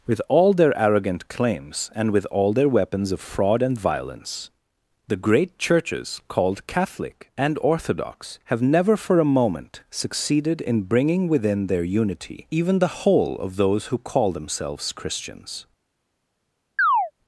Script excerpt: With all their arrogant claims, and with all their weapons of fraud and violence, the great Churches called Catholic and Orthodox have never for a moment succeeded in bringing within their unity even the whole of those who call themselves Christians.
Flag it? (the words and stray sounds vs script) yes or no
yes